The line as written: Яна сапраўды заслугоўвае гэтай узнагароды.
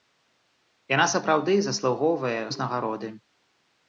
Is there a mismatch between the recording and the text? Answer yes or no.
yes